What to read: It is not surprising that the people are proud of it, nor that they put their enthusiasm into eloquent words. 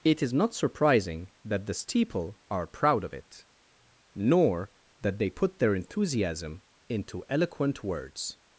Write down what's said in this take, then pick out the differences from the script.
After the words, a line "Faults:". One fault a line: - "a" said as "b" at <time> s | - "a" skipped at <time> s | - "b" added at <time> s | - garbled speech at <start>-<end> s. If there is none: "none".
It is not surprising that the steeple are proud of it, nor that they put their enthusiasm into eloquent words.
Faults:
- "people" said as "steeple" at 1.7 s